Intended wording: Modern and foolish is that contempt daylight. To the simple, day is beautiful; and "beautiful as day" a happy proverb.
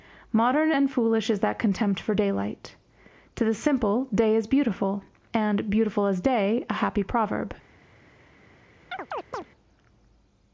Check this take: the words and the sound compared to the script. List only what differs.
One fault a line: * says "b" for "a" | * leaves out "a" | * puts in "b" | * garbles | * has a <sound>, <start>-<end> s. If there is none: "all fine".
* puts in "for"
* has a chirp, 8.9-9.5 s